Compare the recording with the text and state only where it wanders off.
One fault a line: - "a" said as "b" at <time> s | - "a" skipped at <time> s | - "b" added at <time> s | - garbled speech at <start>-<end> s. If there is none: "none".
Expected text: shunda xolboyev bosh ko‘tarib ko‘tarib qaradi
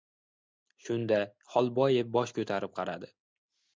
- "ko‘tarib" skipped at 2.8 s